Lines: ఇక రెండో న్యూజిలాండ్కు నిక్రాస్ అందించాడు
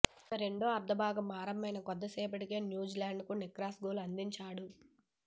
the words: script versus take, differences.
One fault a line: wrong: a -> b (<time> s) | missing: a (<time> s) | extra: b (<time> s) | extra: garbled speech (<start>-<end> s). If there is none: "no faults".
extra: అర్ధభాగం ఆరంభమైన కొద్దిసేపటికే (0.7 s)
extra: గోల్ (3.9 s)